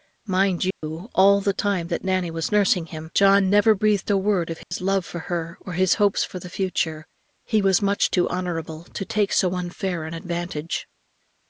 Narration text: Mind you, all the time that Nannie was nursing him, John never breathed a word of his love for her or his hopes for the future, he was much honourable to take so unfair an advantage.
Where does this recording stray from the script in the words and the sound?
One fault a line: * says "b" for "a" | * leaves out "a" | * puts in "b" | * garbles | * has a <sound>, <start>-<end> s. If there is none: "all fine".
* has a dropout, 0.7-0.8 s
* has a dropout, 4.6-4.7 s
* puts in "too"